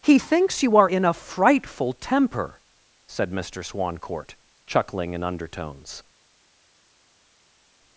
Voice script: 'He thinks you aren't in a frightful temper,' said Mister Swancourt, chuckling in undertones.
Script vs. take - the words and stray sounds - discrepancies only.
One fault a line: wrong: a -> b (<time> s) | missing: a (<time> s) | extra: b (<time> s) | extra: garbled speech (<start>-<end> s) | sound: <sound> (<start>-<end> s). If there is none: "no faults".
wrong: aren't -> are (0.8 s)